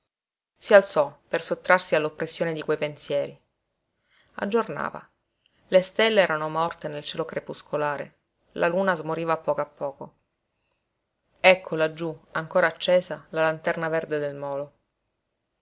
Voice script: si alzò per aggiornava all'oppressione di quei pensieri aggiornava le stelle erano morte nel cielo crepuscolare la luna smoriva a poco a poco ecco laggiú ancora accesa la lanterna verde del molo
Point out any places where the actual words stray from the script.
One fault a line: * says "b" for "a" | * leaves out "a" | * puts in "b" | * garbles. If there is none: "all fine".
* says "sottrarsi" for "aggiornava"